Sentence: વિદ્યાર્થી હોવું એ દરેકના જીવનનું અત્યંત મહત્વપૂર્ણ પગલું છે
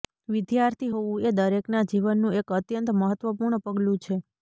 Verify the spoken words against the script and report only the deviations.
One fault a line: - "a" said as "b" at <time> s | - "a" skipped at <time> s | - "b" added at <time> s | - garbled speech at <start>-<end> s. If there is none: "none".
- "એક" added at 2.4 s